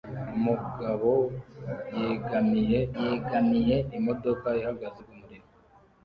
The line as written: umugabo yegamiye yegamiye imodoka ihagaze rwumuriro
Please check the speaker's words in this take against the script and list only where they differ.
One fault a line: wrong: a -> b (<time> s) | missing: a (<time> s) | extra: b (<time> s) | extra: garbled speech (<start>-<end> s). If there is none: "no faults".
no faults